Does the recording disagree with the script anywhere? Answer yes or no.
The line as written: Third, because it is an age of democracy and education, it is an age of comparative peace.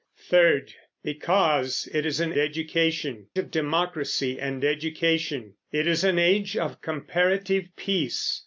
yes